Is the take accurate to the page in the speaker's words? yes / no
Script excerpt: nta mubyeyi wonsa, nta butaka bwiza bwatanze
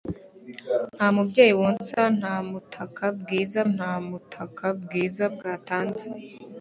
no